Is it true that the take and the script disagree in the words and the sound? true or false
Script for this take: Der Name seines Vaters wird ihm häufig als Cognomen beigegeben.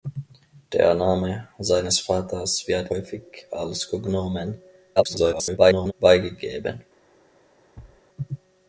true